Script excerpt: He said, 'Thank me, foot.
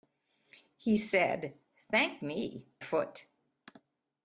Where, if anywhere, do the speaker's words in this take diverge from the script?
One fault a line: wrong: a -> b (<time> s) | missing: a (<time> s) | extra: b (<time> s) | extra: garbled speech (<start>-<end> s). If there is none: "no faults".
no faults